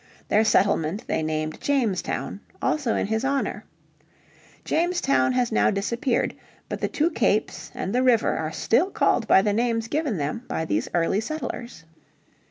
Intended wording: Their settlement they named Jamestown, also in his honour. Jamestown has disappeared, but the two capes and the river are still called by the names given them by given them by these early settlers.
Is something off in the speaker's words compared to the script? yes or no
yes